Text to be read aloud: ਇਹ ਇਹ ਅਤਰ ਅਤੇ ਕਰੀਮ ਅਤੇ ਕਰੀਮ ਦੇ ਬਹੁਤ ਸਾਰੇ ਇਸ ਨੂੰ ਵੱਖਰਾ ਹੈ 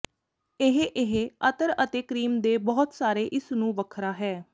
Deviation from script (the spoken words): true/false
true